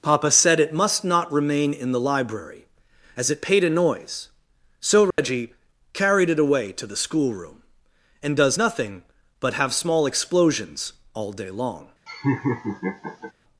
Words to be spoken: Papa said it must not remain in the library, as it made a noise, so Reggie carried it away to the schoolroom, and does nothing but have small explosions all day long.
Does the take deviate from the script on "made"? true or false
true